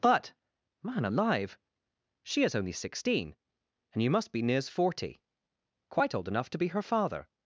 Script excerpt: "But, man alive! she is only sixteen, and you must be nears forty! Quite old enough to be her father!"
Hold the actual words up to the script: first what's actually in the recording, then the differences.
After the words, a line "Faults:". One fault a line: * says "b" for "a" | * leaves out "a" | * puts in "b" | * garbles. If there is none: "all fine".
"But, man alive! she is only sixteen, and you must be nears forty! Quite old enough to be her father!"
Faults:
all fine